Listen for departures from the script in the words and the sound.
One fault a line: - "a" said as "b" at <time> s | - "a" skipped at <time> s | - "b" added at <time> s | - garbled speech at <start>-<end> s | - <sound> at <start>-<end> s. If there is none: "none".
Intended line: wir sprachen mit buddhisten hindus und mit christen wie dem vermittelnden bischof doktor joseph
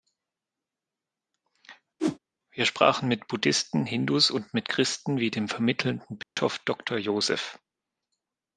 - whoosh at 2.0-2.2 s
- dropout at 6.2-6.4 s